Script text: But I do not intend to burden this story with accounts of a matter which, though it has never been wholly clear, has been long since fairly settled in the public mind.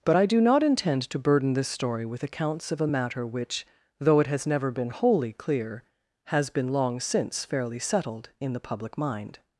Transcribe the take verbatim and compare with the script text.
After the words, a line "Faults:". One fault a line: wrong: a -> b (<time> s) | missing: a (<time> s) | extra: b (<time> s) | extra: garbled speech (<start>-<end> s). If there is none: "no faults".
But I do not intend to burden this story with accounts of a matter which, though it has never been wholly clear, has been long since fairly settled in the public mind.
Faults:
no faults